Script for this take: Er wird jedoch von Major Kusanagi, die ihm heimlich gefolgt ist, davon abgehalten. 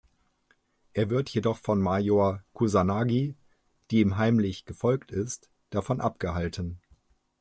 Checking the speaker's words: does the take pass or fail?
pass